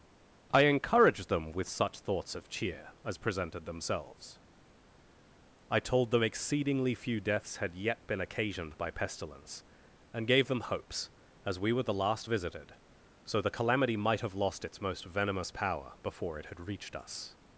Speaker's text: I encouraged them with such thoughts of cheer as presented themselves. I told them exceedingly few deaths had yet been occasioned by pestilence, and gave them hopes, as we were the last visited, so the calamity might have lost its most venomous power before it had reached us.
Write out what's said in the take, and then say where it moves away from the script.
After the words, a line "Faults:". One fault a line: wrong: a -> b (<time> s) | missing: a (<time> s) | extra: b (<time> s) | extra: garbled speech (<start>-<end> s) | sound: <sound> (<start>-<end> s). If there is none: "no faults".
I encouraged them with such thoughts of cheer as presented themselves. I told them exceedingly few deaths had yet been occasioned by pestilence, and gave them hopes, as we were the last visited, so the calamity might have lost its most venomous power before it had reached us.
Faults:
no faults